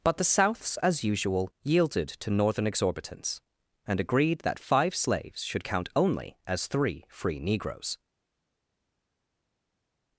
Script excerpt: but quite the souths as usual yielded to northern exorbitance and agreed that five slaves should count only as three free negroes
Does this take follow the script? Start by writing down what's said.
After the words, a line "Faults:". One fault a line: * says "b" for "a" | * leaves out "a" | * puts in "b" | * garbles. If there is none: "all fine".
but the souths as usual yielded to northern exorbitance and agreed that five slaves should count only as three free negroes
Faults:
* leaves out "quite"